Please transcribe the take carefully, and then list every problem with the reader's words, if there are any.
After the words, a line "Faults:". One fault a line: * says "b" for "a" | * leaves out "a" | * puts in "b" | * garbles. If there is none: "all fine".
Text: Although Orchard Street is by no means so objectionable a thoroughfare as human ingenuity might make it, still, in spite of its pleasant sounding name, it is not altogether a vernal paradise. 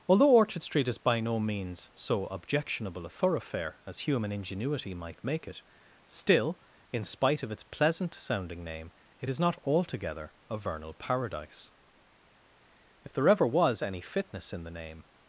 Although Orchard Street is by no means so objectionable a thoroughfare as human ingenuity might make it, still, in spite of its pleasant sounding name, it is not altogether a vernal paradise. If there ever was any fitness in the name
Faults:
* puts in "If there ever was any fitness in the name"